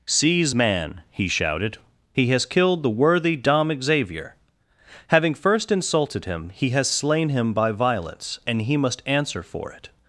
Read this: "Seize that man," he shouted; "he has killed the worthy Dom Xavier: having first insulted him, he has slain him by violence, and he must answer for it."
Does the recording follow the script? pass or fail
fail